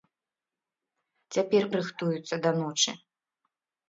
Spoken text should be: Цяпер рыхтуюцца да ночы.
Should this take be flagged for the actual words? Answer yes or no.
no